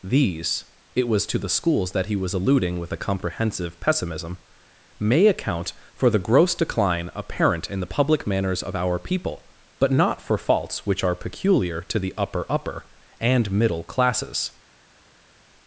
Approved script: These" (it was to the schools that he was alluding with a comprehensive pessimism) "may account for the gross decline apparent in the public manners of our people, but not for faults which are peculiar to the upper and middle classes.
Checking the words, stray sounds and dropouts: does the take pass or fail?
fail